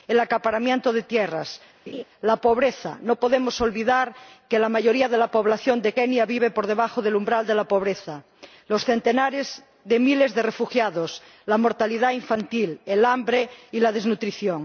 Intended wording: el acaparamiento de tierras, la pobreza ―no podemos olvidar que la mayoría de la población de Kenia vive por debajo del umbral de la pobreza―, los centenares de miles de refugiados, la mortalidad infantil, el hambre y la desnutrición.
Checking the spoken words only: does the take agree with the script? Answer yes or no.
yes